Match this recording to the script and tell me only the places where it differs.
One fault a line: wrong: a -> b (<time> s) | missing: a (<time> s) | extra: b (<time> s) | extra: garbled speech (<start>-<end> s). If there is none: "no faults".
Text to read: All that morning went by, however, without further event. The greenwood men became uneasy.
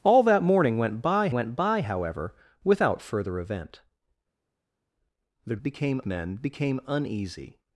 extra: went by (1.3 s)
wrong: greenwood -> became (5.6 s)